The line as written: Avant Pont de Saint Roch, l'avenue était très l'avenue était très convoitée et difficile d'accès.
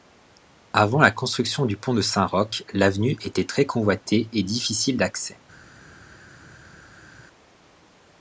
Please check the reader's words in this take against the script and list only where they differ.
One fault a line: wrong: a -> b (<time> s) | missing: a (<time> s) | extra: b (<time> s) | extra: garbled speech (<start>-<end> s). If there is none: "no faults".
extra: la construction du (1.0 s)
missing: l'avenue était très (3.7 s)